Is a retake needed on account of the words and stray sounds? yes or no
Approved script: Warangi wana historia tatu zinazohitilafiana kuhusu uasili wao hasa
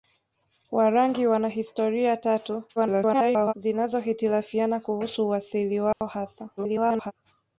yes